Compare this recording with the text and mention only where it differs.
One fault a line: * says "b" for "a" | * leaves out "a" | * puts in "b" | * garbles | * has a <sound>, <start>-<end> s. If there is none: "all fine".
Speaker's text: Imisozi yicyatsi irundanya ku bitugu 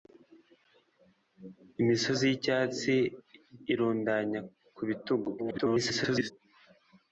* garbles